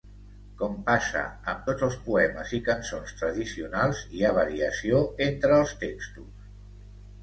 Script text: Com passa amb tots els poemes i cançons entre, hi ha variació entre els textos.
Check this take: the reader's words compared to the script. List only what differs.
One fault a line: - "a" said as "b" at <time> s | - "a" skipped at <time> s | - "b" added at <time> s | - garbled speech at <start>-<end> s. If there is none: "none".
- "entre" said as "tradicionals" at 3.2 s